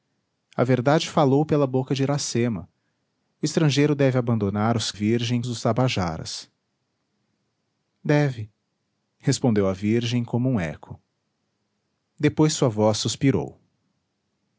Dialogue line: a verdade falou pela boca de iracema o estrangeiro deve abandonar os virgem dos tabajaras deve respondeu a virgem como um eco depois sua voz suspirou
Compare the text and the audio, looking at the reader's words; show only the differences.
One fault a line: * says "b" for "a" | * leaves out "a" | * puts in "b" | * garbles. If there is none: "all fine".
all fine